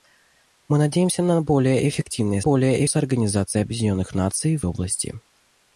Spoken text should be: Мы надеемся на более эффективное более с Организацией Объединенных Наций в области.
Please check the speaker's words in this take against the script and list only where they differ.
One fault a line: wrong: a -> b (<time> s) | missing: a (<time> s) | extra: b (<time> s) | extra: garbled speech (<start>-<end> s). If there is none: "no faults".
no faults